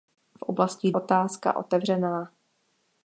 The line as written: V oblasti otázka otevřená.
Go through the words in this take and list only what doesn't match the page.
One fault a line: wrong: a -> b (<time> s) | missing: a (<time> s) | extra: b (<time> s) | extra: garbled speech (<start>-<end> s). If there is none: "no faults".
no faults